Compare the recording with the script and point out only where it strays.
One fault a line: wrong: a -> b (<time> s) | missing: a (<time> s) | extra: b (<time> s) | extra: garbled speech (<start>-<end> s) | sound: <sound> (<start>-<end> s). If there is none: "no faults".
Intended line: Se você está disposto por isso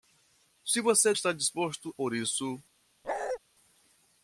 sound: bark (3.0-3.4 s)